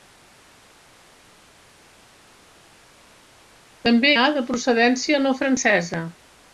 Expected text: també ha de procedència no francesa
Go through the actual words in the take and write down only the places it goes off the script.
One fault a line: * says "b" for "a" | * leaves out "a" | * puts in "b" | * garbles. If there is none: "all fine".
all fine